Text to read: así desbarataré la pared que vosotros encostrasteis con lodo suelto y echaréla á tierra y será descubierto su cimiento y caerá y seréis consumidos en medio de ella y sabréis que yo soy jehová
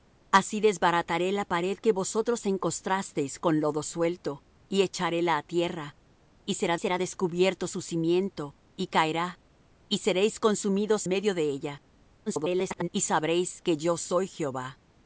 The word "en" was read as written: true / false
false